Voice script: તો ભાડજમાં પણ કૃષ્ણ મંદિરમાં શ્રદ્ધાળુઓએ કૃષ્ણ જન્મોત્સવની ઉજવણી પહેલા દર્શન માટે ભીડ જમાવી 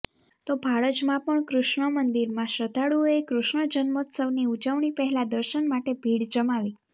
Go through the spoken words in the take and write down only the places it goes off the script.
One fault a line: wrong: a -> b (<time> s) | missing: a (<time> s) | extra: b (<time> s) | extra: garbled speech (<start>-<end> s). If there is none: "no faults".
no faults